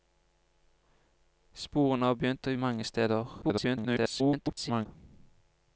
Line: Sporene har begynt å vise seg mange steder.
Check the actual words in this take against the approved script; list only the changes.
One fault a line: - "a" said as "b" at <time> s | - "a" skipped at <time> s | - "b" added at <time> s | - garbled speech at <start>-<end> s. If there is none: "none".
- "vise seg" skipped at 2.5 s
- garbled speech at 3.4-4.9 s